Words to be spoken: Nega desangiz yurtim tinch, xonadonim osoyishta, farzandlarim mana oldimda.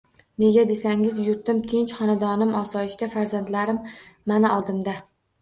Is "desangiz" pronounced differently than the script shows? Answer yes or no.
no